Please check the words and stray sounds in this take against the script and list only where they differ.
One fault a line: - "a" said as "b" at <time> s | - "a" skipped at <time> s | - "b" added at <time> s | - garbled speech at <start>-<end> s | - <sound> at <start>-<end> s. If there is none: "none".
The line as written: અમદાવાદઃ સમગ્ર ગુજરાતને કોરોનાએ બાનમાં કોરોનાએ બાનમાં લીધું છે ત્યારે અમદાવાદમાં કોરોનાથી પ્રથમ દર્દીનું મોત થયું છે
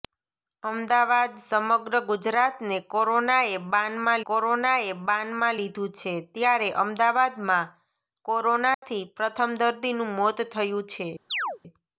- dropout at 8.7-8.8 s
- chirp at 11.3-11.6 s